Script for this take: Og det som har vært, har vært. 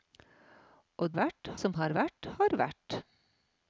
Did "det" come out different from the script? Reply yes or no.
yes